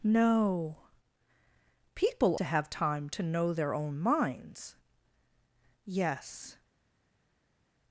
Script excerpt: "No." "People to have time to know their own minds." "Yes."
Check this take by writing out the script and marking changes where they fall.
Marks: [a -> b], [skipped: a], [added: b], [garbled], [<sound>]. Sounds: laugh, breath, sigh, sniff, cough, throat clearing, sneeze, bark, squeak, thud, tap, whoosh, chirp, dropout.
"No." "People to have time to know their own minds." "Yes."